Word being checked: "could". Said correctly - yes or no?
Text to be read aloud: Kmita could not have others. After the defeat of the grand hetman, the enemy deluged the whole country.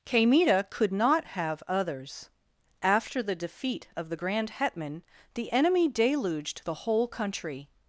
yes